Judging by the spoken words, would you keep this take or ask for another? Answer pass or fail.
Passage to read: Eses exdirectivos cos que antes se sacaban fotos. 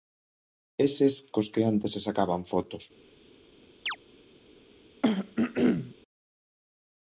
fail